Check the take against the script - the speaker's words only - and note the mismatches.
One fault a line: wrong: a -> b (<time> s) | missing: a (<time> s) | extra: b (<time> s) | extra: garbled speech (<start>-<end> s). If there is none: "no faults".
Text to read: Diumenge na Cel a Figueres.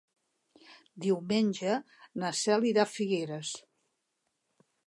extra: irà (2.7 s)